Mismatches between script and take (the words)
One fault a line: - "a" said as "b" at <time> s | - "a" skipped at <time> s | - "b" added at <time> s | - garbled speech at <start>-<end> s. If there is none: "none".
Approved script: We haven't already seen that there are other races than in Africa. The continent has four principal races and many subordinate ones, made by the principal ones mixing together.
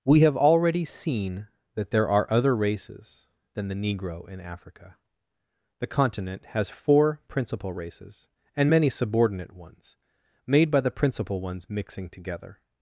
- "haven't" said as "have" at 0.2 s
- "the negro" added at 3.7 s